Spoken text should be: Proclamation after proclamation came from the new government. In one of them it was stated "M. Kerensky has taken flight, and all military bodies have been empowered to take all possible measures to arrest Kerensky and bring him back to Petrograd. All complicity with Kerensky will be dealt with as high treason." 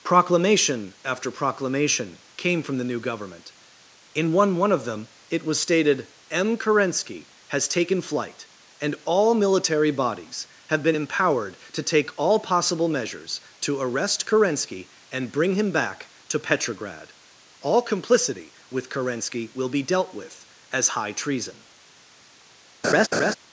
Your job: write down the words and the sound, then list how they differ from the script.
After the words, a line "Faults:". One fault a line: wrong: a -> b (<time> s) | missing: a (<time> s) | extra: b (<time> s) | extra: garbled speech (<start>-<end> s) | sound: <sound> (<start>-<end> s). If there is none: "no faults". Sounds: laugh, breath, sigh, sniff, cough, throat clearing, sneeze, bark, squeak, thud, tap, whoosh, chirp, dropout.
Proclamation after proclamation came from the new government. In one one of them it was stated "M. Kerensky has taken flight, and all military bodies have been empowered to take all possible measures to arrest Kerensky and bring him back to Petrograd. All complicity with Kerensky will be dealt with as high treason."
Faults:
extra: one (4.5 s)
sound: laugh (22.8-23.3 s)